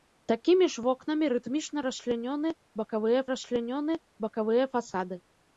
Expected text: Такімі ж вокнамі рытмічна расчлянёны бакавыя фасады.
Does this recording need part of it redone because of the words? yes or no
yes